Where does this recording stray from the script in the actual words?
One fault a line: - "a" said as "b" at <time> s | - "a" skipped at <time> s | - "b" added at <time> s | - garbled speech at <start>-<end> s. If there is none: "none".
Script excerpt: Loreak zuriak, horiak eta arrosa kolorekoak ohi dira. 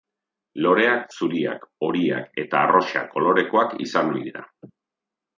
- "izan" added at 3.9 s